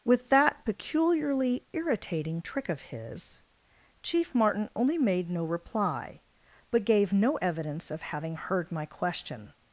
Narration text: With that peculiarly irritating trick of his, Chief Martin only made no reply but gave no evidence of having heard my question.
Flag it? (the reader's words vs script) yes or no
no